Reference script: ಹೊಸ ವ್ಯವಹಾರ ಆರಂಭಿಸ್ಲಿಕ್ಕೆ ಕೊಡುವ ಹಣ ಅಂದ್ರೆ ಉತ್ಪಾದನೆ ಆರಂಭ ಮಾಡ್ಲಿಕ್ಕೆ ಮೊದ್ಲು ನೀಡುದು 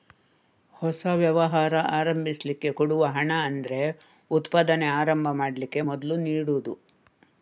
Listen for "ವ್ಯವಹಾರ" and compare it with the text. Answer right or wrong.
right